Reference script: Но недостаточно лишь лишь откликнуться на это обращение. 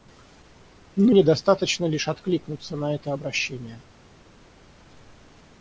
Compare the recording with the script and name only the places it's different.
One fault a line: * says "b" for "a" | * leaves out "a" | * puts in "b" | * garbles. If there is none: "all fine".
* leaves out "лишь"